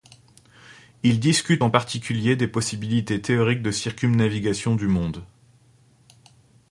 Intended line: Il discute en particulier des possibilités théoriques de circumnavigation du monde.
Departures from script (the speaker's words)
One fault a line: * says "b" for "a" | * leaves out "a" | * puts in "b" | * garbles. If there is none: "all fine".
all fine